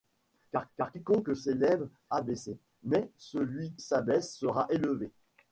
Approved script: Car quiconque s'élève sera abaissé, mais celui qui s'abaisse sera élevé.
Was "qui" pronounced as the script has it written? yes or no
no